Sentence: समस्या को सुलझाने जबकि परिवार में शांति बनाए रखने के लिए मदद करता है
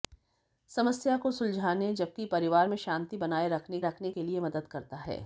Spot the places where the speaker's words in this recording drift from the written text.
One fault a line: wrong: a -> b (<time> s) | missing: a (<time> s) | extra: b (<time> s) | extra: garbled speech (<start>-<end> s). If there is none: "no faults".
extra: रखने (3.8 s)